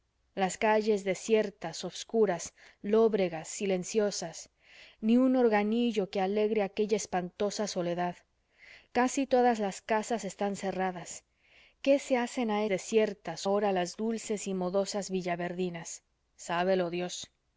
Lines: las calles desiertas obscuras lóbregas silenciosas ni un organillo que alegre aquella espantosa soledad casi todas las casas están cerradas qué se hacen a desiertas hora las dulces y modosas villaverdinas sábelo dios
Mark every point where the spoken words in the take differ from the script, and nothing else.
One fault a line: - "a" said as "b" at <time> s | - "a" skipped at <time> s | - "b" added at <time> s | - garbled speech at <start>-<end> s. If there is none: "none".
none